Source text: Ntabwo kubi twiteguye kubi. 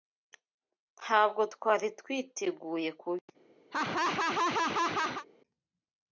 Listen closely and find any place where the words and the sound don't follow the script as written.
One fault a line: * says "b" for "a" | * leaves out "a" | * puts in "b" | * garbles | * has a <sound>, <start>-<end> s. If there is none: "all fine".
* says "twari" for "kubi"
* has a laugh, 3.7-5.3 s